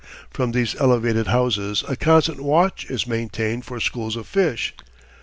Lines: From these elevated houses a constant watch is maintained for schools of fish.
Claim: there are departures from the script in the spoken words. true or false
false